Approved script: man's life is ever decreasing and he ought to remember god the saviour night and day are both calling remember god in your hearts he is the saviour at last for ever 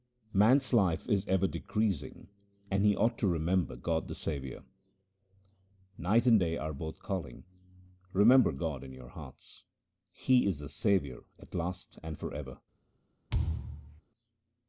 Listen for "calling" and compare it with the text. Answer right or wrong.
right